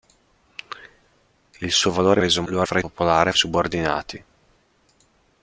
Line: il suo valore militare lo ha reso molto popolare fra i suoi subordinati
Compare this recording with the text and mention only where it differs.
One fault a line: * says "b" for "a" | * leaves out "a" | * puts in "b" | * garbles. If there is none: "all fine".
* says "reso" for "militare"
* leaves out "reso molto popolare"
* says "popolare" for "suoi"